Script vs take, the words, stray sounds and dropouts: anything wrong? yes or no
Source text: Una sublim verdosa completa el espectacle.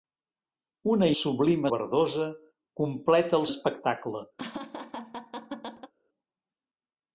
yes